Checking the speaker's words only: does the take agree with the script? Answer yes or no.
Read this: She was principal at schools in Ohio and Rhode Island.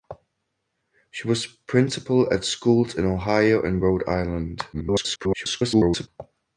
no